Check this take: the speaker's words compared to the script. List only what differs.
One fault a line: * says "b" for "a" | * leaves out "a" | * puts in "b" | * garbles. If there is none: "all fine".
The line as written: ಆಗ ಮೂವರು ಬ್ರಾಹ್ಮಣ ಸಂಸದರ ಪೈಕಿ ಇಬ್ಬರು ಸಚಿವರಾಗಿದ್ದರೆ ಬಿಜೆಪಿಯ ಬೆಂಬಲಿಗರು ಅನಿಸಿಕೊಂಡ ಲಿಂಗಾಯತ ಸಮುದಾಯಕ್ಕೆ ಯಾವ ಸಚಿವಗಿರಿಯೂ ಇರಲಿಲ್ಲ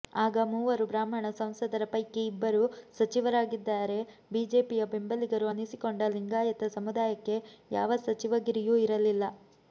all fine